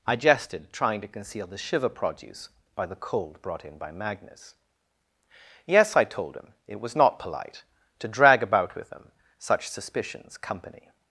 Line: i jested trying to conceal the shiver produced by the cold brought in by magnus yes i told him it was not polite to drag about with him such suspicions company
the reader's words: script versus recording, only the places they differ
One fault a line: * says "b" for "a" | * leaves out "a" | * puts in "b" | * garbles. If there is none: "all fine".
* says "produce" for "produced"